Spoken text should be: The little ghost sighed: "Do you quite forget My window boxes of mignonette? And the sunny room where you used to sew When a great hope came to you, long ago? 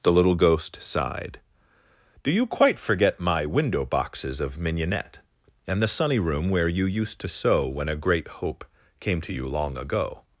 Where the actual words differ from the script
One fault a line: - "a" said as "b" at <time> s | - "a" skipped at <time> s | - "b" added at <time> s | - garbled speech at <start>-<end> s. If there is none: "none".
none